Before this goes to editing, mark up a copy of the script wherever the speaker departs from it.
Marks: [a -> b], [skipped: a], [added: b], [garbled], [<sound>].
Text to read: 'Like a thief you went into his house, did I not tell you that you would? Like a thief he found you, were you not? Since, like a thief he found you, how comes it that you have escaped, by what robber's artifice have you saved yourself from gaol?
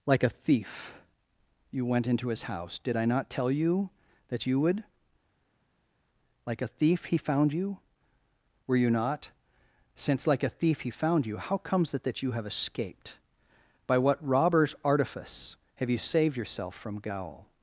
'Like a thief you went into his house, did I not tell you that you would? Like a thief he found you, were you not? Since, like a thief he found you, how comes it that you have escaped, by what robber's artifice have you saved yourself from gaol?